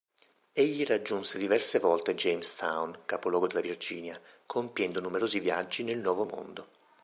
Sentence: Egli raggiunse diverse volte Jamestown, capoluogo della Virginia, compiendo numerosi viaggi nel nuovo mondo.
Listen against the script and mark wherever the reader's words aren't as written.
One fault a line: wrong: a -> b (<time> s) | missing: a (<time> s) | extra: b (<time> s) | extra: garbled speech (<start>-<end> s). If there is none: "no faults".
no faults